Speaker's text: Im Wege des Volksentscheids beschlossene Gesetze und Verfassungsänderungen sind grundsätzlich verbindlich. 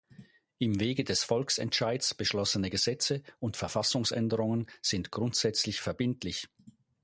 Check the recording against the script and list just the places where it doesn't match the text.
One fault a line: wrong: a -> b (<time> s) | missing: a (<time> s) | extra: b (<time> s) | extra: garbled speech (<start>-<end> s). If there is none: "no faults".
no faults